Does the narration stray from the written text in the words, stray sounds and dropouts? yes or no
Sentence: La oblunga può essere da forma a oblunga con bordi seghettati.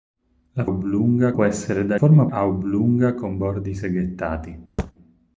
yes